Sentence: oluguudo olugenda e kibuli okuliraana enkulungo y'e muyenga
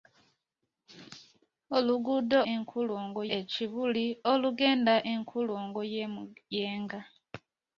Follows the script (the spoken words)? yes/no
no